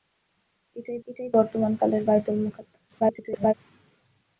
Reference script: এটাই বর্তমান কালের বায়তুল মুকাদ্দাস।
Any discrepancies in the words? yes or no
yes